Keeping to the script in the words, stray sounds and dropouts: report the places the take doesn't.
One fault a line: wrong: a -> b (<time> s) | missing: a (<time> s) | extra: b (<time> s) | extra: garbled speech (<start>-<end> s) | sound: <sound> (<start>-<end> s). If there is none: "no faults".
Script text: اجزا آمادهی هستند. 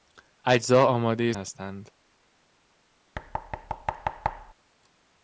sound: thud (3.1-4.5 s)